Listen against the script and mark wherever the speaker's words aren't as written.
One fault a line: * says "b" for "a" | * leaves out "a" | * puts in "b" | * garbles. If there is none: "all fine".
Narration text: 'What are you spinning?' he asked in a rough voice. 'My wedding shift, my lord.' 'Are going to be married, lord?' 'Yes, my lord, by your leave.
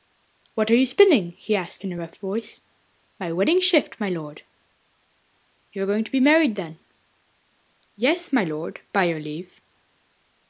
* puts in "You"
* says "then" for "lord"